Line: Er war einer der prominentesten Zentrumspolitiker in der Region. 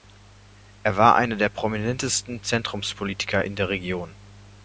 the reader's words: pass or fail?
pass